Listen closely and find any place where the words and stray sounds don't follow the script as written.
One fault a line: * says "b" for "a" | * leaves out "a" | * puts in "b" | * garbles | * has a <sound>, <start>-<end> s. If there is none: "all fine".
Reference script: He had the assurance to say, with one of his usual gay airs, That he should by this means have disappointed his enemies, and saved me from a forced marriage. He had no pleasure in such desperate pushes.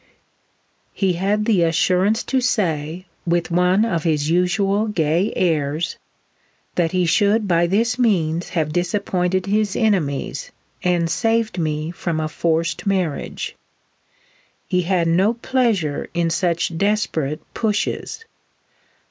all fine